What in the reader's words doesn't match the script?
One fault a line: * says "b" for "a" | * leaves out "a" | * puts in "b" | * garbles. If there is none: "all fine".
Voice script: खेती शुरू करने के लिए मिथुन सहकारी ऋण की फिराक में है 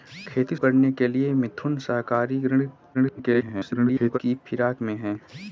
* leaves out "शुरू"
* garbles